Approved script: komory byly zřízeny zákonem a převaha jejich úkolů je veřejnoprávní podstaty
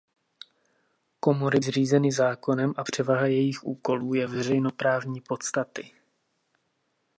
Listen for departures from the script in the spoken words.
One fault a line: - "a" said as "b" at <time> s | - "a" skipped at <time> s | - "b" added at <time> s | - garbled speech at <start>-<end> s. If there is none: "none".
- "byly" skipped at 1.6 s